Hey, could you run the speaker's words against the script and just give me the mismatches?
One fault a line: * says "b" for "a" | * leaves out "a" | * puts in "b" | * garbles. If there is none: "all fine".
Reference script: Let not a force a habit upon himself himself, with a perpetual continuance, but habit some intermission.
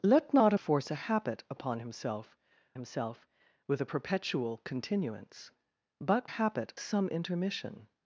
all fine